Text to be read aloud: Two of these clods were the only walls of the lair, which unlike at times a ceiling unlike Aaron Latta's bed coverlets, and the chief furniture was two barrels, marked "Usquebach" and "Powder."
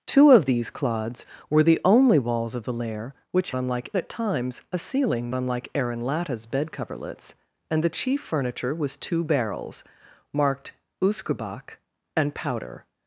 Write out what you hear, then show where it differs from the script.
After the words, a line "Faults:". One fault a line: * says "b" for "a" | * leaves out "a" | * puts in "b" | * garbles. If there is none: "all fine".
Two of these clods were the only walls of the lair, which unlike at times a ceiling unlike Aaron Latta's bed coverlets, and the chief furniture was two barrels, marked "Usquebach" and "Powder."
Faults:
all fine